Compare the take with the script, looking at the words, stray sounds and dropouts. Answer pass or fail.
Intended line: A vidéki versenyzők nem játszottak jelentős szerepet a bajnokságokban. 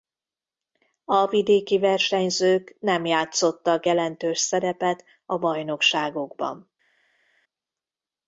pass